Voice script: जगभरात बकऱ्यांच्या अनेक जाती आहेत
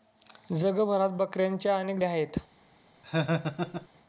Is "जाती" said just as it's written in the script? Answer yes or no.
no